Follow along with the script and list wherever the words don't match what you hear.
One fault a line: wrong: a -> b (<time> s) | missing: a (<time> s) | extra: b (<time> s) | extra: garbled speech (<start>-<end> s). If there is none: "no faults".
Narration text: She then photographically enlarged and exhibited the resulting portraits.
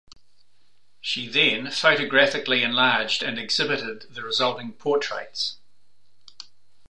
no faults